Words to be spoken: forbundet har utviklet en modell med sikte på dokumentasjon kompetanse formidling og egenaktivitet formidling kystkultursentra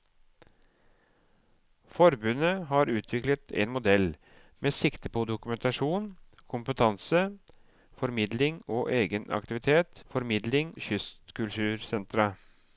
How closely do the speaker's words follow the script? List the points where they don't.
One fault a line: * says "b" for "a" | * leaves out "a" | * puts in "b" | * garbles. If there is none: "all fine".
all fine